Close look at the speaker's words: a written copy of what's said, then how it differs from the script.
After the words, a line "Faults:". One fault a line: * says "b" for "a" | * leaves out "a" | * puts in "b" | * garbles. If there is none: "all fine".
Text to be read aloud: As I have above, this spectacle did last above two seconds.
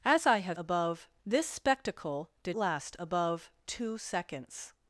As I have above, this spectacle did last above two seconds.
Faults:
all fine